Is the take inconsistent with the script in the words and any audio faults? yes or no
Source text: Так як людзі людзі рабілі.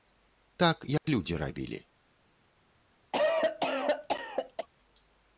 yes